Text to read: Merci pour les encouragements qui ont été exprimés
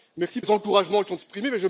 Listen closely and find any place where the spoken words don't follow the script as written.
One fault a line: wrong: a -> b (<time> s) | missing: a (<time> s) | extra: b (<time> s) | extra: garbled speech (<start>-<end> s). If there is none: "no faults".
missing: pour (0.4 s)
missing: été (1.2 s)